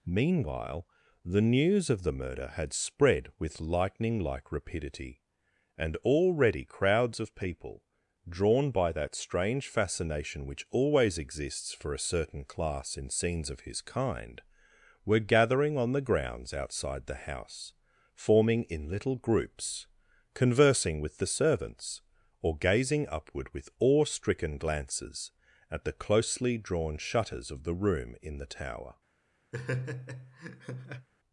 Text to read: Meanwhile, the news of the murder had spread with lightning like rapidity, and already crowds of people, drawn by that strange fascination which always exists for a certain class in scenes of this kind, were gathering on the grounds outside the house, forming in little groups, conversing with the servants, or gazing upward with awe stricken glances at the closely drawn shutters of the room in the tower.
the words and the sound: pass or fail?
fail